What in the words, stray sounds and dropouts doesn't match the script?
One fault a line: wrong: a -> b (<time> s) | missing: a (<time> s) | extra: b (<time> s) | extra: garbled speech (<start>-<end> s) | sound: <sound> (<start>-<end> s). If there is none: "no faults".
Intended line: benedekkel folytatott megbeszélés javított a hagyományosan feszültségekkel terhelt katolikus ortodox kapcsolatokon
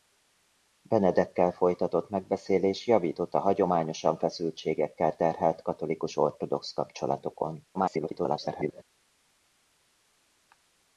extra: garbled speech (7.7-8.8 s)